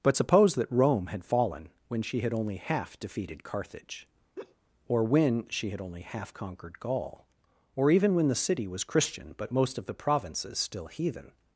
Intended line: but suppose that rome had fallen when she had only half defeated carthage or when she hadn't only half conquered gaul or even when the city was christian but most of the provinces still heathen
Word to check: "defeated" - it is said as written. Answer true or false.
true